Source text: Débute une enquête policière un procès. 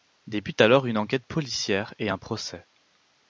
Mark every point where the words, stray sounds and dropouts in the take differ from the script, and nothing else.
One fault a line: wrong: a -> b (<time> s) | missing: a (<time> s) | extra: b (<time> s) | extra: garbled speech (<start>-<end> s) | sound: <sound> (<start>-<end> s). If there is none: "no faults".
extra: alors (0.6 s)
extra: et (2.0 s)